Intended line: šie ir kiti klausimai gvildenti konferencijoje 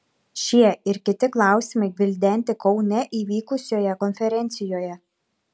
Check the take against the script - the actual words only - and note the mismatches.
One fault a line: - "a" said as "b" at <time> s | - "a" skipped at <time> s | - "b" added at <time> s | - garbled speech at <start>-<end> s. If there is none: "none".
- "kaune įvykusioje" added at 2.7 s